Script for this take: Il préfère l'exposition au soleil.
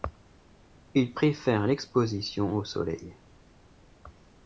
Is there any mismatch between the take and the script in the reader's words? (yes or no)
no